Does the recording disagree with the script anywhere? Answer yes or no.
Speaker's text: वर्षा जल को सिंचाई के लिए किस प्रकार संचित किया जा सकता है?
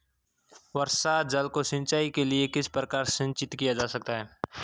no